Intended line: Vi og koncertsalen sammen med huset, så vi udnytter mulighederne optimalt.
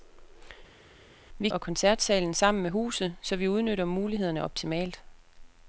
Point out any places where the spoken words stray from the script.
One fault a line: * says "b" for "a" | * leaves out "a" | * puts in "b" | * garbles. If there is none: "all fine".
all fine